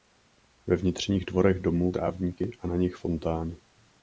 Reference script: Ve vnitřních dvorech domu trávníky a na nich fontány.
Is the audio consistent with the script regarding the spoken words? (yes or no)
yes